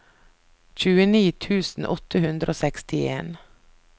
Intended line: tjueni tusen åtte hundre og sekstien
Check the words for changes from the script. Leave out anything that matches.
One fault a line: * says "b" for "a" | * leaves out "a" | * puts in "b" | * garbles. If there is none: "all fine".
all fine